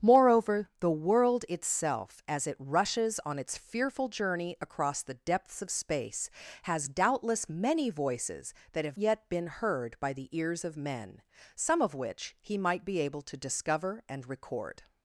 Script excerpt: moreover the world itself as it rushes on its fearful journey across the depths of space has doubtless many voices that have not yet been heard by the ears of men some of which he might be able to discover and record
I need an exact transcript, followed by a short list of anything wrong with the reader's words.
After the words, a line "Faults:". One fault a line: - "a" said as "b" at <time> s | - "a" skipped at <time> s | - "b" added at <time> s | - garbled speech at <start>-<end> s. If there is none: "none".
moreover the world itself as it rushes on its fearful journey across the depths of space has doubtless many voices that have yet been heard by the ears of men some of which he might be able to discover and record
Faults:
- "not" skipped at 9.0 s